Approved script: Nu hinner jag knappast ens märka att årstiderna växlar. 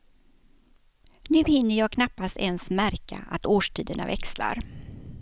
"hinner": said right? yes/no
yes